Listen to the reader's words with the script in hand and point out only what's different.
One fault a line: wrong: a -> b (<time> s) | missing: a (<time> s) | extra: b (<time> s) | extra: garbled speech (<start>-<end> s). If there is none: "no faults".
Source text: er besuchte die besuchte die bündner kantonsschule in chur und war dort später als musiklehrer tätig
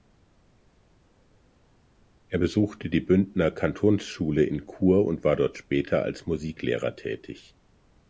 missing: besuchte die (3.0 s)